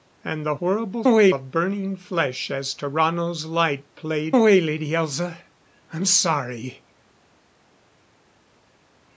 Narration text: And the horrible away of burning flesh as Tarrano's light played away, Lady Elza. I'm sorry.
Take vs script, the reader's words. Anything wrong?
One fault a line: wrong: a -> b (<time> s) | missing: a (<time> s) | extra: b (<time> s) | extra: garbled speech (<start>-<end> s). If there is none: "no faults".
no faults